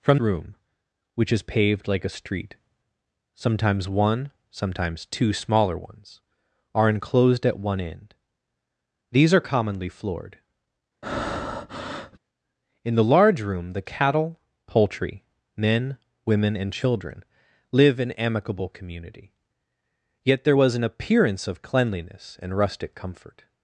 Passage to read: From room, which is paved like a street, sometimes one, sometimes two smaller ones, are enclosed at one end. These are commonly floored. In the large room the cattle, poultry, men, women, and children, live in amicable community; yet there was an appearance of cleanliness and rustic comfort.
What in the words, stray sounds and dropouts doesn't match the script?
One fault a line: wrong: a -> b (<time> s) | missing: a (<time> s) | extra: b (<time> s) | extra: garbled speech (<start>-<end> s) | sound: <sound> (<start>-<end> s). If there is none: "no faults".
sound: breath (11.0-12.2 s)